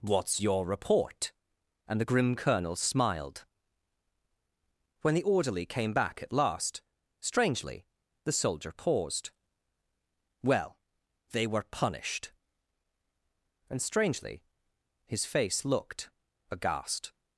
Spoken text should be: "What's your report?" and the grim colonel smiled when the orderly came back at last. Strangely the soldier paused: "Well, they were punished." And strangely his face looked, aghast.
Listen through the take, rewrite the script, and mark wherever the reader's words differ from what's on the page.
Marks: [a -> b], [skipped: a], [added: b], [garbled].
"What's your report?" and the grim colonel smiled when the orderly came back at last. Strangely the soldier paused: "Well, they were punished." And strangely his face looked, aghast.